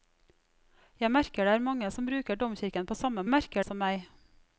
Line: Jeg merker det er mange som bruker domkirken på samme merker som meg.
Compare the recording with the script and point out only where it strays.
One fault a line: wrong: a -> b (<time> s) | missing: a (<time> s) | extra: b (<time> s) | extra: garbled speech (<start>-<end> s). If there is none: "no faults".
no faults